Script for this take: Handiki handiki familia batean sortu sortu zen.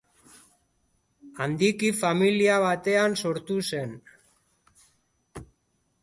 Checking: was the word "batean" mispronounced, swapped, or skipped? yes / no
no